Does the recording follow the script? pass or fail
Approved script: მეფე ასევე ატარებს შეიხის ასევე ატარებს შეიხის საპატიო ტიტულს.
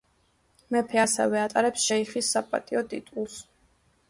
fail